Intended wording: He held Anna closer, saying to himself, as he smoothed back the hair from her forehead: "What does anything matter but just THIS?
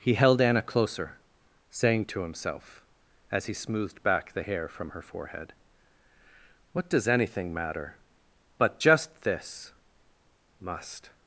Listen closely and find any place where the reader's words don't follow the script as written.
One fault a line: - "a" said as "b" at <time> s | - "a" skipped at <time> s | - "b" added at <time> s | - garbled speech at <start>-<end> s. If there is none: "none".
- "Must" added at 10.6 s